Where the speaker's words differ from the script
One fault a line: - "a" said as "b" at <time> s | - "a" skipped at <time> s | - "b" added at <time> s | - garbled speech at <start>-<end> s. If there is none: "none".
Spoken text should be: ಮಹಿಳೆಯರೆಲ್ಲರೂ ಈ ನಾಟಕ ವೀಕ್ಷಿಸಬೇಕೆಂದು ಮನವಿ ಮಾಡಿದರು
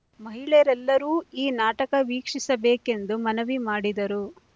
none